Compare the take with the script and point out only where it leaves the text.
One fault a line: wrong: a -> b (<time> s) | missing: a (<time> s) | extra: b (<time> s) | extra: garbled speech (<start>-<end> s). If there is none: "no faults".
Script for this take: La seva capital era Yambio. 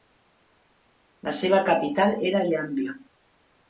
no faults